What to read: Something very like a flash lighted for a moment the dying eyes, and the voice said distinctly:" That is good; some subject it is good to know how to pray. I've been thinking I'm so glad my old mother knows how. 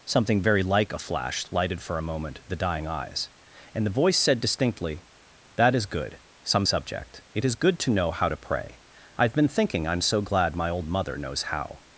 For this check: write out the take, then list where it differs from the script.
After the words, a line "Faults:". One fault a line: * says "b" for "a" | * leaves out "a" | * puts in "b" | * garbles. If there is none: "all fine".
Something very like a flash lighted for a moment the dying eyes, and the voice said distinctly:" That is good; some subject it is good to know how to pray. I've been thinking I'm so glad my old mother knows how.
Faults:
all fine